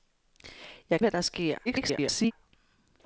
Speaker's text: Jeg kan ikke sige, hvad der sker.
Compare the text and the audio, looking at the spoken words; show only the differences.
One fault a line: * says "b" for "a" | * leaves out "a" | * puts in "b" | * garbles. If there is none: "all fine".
* leaves out "kan ikke sige"
* garbles